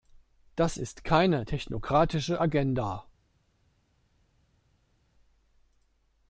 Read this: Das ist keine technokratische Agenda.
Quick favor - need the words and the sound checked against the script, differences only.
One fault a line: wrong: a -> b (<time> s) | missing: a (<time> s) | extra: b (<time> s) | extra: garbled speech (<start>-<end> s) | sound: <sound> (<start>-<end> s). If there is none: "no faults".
no faults